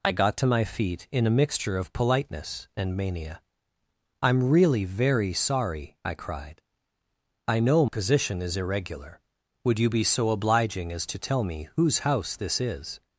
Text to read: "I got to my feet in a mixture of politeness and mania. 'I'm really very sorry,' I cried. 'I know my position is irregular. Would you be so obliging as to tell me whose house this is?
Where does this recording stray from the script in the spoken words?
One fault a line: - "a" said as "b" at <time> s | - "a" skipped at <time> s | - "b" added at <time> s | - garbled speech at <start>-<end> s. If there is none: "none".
- "my" skipped at 7.8 s